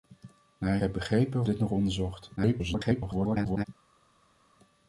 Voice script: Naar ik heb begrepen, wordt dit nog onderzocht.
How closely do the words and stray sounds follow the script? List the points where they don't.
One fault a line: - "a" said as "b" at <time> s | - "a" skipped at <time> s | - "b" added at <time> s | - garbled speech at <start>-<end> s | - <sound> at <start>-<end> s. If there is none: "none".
- "ik" skipped at 0.8 s
- "wordt" skipped at 1.4 s
- garbled speech at 2.4-3.6 s